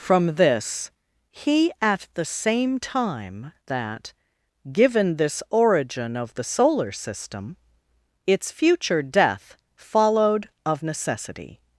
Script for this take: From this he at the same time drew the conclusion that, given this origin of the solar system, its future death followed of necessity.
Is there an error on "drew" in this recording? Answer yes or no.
yes